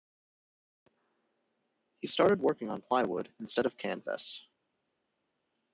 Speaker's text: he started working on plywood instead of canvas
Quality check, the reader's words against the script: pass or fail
pass